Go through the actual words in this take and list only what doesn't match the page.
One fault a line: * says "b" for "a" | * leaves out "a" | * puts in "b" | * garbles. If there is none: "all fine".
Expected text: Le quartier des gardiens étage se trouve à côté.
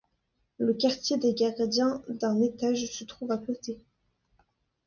* puts in "d'un"